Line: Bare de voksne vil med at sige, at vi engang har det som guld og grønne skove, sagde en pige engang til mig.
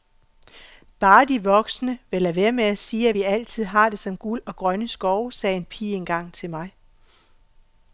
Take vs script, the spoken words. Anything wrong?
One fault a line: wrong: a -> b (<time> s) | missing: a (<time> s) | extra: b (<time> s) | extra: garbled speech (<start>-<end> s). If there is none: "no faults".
extra: lade være (2.2 s)
wrong: engang -> altid (3.2 s)